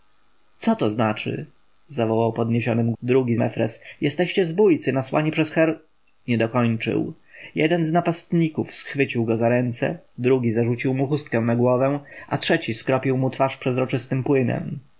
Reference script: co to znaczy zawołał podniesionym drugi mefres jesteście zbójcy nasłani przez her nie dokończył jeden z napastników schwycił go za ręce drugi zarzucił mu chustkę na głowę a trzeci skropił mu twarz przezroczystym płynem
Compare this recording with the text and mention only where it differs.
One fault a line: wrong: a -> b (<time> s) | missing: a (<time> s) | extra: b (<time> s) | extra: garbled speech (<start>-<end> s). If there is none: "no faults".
no faults